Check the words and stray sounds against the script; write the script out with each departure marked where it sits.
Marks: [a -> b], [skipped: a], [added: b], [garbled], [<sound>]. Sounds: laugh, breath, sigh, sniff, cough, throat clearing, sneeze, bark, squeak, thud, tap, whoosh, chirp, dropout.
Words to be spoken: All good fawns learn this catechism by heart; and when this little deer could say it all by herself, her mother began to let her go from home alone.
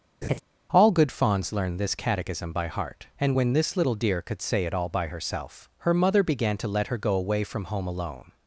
[laugh] All good fawns learn this catechism by heart; and when this little deer could say it all by herself, her mother began to let her go [added: away] from home alone.